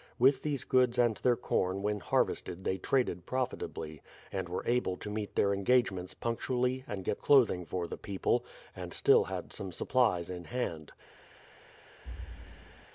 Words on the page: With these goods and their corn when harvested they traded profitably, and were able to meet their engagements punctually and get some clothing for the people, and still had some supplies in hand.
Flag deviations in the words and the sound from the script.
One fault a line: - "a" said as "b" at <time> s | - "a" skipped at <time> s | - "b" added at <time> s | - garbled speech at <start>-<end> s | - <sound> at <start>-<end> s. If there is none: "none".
- "some" skipped at 7.2 s
- thud at 12.0-12.9 s